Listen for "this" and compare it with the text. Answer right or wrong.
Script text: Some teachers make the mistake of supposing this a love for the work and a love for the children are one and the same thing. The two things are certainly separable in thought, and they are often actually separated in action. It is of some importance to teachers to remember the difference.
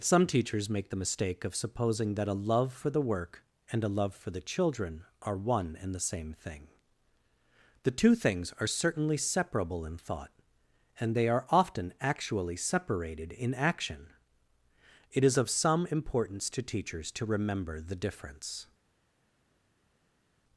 wrong